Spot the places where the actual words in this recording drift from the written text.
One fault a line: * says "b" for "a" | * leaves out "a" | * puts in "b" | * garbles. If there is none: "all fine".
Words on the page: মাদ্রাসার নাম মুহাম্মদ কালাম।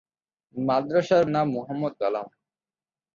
all fine